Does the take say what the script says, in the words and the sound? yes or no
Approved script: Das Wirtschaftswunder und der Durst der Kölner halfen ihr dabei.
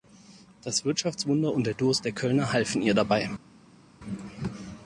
yes